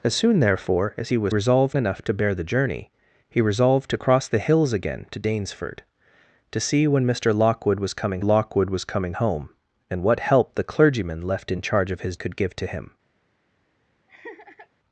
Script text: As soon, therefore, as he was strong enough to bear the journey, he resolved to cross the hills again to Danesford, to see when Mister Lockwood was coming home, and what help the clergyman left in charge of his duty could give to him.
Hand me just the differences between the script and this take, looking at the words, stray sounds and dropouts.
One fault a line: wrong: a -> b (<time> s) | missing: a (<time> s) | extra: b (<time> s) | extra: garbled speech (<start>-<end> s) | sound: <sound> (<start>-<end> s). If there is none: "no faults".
wrong: strong -> resolved (1.3 s)
extra: Lockwood was coming (8.2 s)
missing: duty (12.2 s)
sound: laugh (14.1-14.7 s)